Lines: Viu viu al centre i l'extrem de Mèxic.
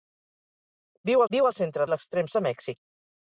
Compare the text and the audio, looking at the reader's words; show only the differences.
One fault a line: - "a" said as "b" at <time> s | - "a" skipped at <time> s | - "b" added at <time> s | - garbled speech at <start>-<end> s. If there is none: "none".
none